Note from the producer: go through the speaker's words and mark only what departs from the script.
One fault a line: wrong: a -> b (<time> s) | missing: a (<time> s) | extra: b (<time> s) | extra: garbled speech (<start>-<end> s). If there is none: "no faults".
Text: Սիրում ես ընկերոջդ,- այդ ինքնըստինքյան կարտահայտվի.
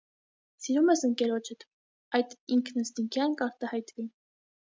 no faults